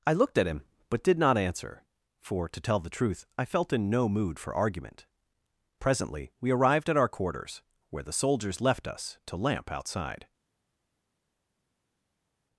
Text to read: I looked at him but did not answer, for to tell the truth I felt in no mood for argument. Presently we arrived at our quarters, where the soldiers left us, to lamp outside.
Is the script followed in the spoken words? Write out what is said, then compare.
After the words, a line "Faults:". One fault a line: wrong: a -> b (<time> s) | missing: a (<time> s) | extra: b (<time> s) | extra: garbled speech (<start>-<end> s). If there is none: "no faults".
I looked at him but did not answer, for to tell the truth I felt in no mood for argument. Presently we arrived at our quarters, where the soldiers left us, to lamp outside.
Faults:
no faults